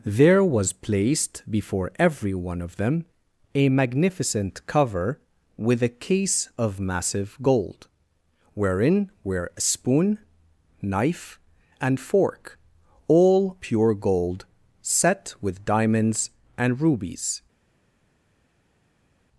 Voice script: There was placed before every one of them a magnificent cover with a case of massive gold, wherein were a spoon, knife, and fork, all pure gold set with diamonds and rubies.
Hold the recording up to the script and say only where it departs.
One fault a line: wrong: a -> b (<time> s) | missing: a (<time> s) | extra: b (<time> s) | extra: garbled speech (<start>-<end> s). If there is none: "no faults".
no faults